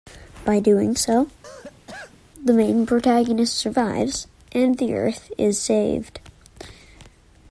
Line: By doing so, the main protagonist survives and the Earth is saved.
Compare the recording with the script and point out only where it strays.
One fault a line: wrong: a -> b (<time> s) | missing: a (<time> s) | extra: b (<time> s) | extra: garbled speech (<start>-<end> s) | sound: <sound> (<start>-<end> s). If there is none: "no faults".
sound: cough (1.4-2.2 s)